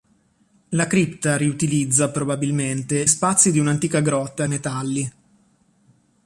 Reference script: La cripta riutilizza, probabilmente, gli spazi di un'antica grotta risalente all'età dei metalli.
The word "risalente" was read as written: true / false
false